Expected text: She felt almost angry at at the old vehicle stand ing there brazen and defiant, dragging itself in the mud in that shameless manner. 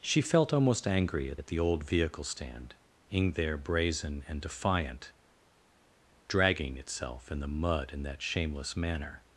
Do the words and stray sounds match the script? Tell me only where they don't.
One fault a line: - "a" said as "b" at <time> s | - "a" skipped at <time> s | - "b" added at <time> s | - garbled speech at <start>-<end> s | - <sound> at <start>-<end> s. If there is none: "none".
none